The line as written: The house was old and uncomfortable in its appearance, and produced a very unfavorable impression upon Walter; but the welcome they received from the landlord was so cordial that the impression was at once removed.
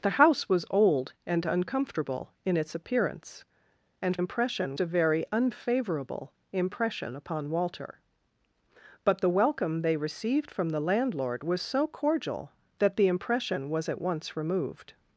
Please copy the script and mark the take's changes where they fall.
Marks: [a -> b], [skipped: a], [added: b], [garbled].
The house was old and uncomfortable in its appearance, and [produced -> impression] a very unfavorable impression upon Walter; but the welcome they received from the landlord was so cordial that the impression was at once removed.